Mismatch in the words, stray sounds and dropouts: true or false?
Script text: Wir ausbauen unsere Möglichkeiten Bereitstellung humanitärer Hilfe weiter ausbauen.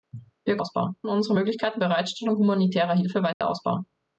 true